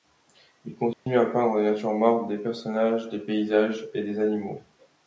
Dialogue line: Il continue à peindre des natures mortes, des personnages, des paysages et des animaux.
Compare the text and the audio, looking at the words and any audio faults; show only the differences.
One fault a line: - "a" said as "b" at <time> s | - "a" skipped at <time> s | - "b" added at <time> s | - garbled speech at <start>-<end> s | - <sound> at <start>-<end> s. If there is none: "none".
- dropout at 0.9-1.1 s